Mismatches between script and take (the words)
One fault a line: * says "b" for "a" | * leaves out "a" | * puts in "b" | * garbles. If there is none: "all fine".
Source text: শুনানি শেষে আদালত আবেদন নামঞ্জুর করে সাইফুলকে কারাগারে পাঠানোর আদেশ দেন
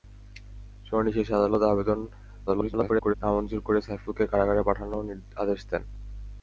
* garbles